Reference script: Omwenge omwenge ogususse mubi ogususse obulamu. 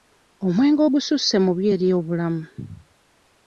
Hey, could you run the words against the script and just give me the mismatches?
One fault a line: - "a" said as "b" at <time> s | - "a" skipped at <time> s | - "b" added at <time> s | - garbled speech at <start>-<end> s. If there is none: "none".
- "omwenge" skipped at 0.8 s
- "ogususse" said as "eri" at 1.7 s